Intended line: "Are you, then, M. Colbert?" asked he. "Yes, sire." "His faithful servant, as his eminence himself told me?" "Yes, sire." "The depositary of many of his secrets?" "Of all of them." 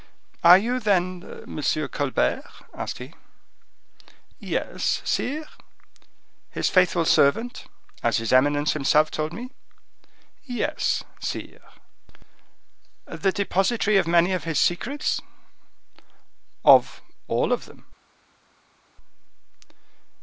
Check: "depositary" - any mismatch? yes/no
no